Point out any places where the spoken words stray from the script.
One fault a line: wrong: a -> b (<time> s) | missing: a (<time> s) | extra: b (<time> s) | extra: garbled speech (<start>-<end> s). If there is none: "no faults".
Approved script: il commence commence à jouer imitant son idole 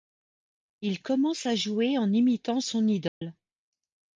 missing: commence (1.5 s)
extra: en (2.0 s)